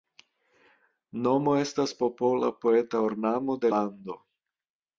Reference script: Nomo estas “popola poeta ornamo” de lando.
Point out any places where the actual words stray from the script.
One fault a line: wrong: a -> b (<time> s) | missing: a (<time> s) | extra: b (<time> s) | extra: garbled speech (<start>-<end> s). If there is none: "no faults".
no faults